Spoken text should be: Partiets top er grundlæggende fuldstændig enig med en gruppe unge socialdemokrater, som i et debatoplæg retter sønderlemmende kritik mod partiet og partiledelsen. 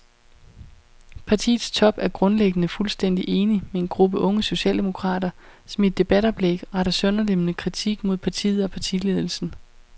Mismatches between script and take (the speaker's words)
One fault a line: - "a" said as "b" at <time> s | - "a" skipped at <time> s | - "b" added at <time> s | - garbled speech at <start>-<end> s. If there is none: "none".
none